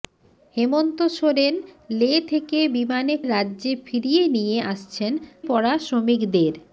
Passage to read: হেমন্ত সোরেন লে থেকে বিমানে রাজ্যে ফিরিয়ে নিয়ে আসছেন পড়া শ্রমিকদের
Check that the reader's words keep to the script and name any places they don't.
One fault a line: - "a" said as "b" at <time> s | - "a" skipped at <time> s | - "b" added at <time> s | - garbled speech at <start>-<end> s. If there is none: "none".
none